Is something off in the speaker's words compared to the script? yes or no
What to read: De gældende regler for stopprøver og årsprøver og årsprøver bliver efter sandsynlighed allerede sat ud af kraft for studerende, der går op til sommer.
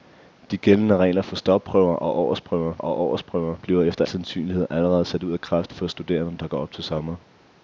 no